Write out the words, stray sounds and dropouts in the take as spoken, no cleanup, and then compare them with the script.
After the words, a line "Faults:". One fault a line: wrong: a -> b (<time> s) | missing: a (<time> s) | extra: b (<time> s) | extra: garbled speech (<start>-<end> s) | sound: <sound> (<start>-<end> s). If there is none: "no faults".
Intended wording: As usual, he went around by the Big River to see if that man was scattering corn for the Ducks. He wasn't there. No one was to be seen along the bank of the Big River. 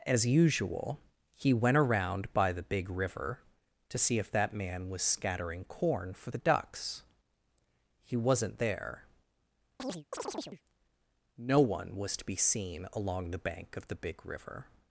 As usual, he went around by the Big River to see if that man was scattering corn for the Ducks. He wasn't there. No one was to be seen along the bank of the Big River.
Faults:
sound: chirp (9.8-10.6 s)